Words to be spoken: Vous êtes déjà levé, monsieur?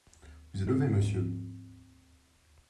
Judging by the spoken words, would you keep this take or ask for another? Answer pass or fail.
fail